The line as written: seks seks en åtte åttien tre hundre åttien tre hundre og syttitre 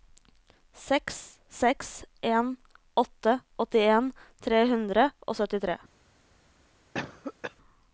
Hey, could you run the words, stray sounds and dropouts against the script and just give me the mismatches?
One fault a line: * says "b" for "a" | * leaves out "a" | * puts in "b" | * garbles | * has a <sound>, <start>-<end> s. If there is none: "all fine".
* leaves out "åttien tre hundre"
* has a cough, 6.9-7.6 s